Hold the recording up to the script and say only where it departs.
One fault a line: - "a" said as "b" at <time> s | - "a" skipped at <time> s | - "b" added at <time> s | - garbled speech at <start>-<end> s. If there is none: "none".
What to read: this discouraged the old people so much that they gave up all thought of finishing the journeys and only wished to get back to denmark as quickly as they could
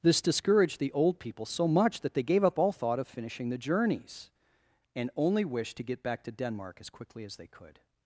none